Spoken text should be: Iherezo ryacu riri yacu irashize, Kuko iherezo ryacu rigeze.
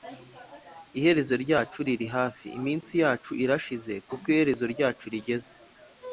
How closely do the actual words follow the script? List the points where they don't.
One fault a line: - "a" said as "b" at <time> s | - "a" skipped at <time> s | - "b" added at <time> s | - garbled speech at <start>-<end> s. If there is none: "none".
- "hafi Iminsi" added at 2.2 s